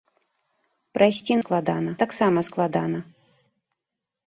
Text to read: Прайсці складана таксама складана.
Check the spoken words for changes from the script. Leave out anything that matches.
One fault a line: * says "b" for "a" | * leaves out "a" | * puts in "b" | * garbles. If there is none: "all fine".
all fine